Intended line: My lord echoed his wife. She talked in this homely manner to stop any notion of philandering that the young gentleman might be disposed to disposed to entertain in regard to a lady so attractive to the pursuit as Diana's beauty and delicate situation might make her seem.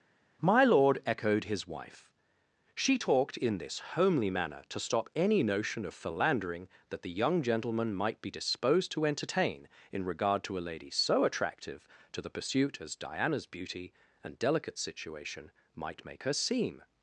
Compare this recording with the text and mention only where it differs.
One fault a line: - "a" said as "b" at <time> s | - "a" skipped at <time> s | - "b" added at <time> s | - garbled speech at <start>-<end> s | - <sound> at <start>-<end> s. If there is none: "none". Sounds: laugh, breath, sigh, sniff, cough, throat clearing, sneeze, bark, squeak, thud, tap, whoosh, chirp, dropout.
- "disposed to" skipped at 9.1 s